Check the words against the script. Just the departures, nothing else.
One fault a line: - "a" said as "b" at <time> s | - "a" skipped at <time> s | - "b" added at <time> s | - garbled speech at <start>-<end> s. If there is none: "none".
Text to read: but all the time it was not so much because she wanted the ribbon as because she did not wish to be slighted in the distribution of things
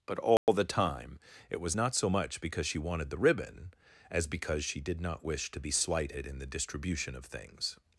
none